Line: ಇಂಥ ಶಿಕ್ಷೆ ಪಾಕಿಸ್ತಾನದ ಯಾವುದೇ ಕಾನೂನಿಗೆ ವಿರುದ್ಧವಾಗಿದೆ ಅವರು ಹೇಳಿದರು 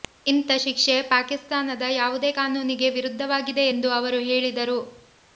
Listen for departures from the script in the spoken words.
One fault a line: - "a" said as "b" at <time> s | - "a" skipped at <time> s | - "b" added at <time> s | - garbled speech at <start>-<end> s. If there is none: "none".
- "ಎಂದು" added at 3.7 s